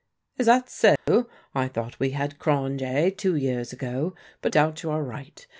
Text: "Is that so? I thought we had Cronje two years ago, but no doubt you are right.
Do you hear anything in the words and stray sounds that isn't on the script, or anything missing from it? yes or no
yes